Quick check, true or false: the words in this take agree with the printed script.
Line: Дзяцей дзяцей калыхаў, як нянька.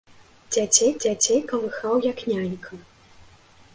true